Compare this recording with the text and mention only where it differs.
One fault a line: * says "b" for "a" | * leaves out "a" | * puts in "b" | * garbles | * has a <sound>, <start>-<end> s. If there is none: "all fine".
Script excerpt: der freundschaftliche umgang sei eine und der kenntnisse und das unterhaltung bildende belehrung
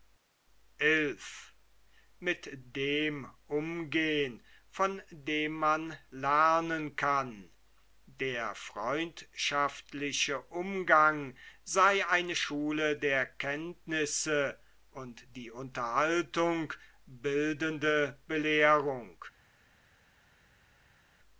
* says "schule" for "und"
* says "die" for "das"